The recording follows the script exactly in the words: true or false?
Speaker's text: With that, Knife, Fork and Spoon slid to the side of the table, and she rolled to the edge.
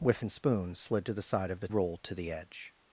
false